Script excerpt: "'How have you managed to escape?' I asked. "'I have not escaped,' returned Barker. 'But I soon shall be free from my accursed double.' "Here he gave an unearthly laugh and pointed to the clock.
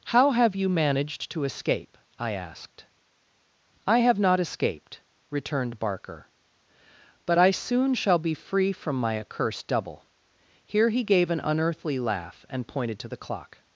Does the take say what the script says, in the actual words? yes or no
yes